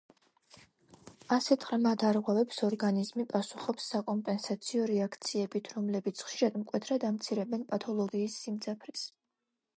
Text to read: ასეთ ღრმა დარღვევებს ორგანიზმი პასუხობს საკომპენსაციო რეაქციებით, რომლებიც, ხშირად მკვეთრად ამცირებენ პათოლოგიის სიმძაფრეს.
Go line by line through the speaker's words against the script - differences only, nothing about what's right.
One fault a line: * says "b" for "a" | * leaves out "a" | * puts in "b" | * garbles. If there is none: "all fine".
all fine